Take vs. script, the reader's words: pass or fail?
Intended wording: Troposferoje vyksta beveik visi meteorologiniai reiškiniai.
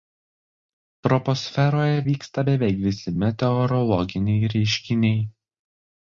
pass